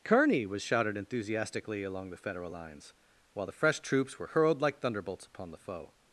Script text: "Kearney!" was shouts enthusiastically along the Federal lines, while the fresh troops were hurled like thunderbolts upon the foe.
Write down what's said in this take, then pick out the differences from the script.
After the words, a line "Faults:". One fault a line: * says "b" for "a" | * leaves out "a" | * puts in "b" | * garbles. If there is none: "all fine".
"Kearney!" was shouted enthusiastically along the Federal lines, while the fresh troops were hurled like thunderbolts upon the foe.
Faults:
* says "shouted" for "shouts"